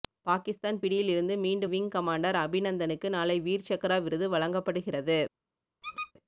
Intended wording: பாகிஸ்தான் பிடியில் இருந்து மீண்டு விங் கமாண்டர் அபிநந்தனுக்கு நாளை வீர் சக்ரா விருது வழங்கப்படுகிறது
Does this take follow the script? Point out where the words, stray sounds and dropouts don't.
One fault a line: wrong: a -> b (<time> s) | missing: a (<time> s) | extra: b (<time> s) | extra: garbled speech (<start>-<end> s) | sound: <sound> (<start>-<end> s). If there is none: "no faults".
sound: squeak (5.8-6.1 s)